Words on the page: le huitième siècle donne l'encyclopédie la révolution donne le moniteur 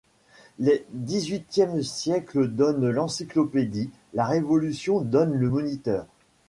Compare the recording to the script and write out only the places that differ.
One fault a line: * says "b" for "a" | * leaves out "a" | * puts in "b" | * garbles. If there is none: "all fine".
* puts in "dix"